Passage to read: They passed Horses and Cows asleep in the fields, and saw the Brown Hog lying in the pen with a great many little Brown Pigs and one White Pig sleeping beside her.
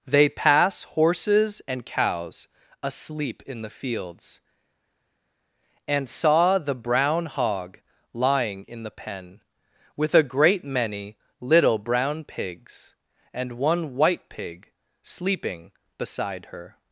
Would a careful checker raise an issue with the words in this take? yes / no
yes